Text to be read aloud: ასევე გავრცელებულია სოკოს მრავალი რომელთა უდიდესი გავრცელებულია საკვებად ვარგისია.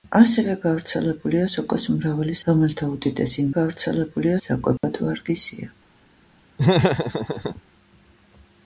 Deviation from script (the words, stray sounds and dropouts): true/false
true